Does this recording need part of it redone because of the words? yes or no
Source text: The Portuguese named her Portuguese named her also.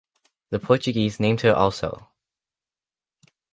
yes